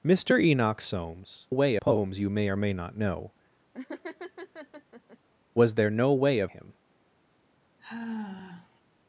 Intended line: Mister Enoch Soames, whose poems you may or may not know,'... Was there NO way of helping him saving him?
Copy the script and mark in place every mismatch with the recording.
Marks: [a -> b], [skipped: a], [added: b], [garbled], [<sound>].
Mister Enoch Soames, [whose -> way] poems you may or may not know,'... [laugh] Was there NO way of [skipped: helping him saving] him? [sigh]